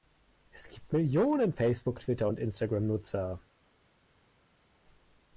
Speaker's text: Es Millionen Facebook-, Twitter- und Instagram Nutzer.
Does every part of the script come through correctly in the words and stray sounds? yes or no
no